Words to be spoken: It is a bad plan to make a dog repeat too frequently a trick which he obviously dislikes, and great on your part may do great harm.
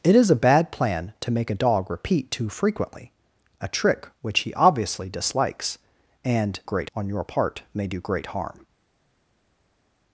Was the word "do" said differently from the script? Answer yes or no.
no